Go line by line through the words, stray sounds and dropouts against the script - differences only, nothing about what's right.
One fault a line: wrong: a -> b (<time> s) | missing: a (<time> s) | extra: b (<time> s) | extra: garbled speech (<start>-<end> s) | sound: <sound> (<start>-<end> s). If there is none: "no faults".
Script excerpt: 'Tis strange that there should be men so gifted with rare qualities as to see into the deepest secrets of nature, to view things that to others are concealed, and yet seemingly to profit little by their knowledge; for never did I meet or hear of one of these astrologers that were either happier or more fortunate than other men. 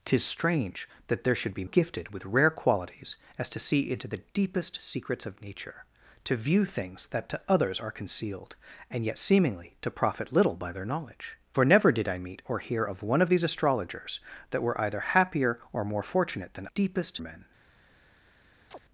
missing: men so (1.6 s)
wrong: other -> deepest (16.7 s)
sound: chirp (18.7-18.8 s)